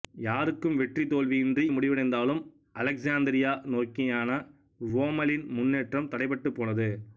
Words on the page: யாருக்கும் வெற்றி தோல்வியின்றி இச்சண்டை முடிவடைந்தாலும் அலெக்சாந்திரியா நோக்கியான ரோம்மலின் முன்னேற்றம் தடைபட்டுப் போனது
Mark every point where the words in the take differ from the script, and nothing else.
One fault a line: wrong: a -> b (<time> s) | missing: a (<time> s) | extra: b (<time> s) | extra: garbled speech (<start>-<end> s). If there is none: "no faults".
missing: இச்சண்டை (1.6 s)